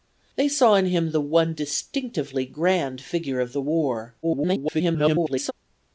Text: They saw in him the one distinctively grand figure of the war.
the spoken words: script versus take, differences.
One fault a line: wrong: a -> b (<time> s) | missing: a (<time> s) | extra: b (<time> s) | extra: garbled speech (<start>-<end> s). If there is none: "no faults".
extra: garbled speech (4.2-5.5 s)